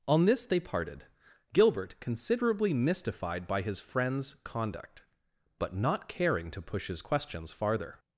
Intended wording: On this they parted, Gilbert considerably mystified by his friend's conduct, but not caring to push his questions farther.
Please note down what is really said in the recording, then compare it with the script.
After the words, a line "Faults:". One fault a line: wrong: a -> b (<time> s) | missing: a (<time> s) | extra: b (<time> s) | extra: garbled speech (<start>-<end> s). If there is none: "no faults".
On this they parted, Gilbert considerably mystified by his friend's conduct, but not caring to push his questions farther.
Faults:
no faults